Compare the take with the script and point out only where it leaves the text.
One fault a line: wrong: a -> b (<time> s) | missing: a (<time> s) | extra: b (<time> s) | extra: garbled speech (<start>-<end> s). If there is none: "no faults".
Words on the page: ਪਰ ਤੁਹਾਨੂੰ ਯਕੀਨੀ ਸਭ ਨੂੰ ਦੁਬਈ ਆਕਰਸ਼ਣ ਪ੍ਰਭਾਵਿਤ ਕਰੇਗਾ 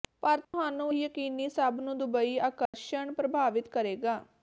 no faults